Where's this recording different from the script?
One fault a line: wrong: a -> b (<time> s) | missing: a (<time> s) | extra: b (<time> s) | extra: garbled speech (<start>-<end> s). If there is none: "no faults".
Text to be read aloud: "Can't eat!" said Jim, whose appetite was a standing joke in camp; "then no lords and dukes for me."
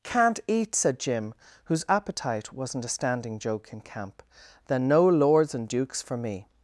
wrong: was -> wasn't (2.5 s)